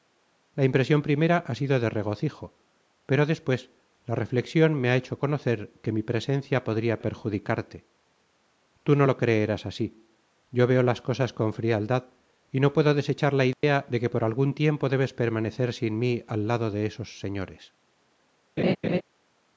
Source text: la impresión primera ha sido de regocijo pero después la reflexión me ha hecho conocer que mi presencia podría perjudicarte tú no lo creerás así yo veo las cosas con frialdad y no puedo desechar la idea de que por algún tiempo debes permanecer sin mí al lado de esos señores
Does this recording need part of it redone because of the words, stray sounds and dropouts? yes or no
yes